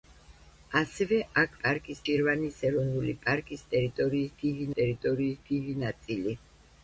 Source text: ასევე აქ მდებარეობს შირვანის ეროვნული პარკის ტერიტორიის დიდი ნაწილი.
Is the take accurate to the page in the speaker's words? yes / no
no